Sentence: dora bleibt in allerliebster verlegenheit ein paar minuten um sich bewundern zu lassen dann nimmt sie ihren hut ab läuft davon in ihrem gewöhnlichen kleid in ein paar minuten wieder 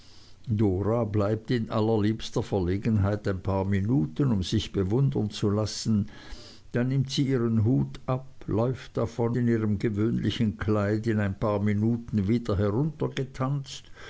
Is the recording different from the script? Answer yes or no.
no